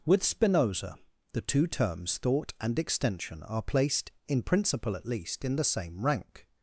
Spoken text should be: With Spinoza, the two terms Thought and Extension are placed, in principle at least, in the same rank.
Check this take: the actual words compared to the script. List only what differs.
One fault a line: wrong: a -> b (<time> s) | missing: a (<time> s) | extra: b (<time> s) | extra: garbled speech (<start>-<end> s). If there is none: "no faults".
no faults